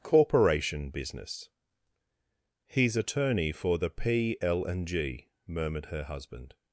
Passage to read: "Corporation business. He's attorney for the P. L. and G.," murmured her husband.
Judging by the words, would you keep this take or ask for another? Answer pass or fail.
pass